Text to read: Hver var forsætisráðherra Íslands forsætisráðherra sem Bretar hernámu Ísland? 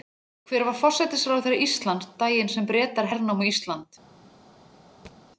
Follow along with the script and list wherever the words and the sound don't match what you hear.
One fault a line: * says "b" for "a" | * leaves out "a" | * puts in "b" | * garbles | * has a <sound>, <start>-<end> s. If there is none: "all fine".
* says "daginn" for "forsætisráðherra"
* has a thud, 5.1-5.2 s